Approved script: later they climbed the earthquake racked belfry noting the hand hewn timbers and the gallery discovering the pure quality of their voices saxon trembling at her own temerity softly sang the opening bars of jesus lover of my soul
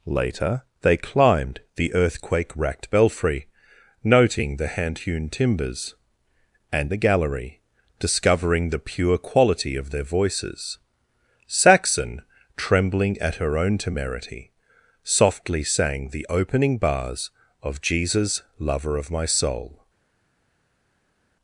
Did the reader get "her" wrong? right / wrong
right